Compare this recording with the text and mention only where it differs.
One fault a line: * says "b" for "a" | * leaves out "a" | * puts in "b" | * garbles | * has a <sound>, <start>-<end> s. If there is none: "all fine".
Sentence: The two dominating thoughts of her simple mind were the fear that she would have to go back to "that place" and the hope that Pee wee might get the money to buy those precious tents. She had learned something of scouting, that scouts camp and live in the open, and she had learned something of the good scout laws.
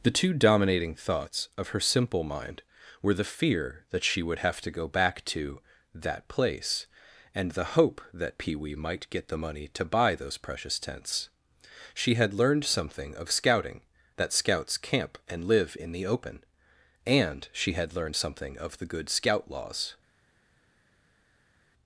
all fine